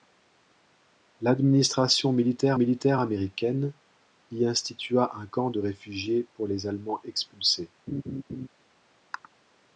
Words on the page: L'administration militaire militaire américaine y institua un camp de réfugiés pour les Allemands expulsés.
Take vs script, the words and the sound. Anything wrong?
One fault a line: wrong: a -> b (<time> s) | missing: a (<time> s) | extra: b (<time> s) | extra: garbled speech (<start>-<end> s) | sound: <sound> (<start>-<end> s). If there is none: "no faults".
sound: laugh (7.9-8.5 s)